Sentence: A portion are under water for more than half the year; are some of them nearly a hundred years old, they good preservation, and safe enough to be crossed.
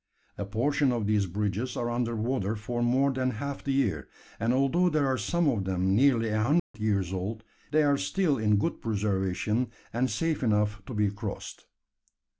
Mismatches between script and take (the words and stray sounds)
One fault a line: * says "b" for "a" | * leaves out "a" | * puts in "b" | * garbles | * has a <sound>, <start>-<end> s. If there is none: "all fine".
* puts in "of these bridges"
* puts in "and although there"
* has a dropout, 6.6-6.7 s
* puts in "are still in"